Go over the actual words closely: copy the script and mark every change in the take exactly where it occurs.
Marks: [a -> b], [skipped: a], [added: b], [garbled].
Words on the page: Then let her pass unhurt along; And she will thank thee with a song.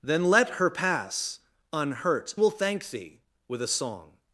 Then let her pass unhurt [skipped: along; And she] will thank thee with a song.